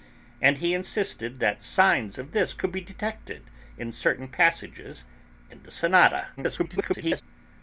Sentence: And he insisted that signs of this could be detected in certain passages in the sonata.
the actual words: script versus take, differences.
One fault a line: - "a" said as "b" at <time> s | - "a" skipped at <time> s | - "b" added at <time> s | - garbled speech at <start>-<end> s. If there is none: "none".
- garbled speech at 6.4-7.2 s